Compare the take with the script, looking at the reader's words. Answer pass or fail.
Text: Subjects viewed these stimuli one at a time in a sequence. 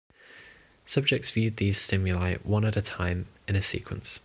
pass